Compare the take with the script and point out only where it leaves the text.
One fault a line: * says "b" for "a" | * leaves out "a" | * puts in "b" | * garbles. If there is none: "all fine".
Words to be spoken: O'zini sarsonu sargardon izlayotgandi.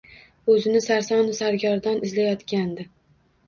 all fine